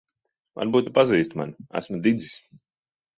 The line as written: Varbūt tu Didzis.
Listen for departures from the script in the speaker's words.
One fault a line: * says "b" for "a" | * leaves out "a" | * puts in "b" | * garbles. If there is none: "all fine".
* puts in "pazīsti mani Esmu"